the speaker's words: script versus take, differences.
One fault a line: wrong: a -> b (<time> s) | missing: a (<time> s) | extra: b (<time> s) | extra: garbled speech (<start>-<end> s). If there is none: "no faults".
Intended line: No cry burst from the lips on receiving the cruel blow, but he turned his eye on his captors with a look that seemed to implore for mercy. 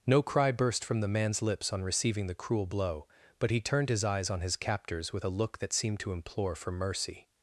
extra: man's (1.1 s)
wrong: eye -> eyes (4.0 s)